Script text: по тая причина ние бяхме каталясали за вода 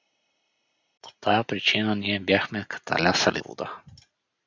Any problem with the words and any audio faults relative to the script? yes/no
yes